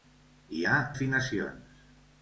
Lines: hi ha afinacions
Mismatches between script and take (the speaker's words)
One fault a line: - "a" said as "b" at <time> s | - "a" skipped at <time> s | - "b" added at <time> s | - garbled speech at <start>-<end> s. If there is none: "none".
none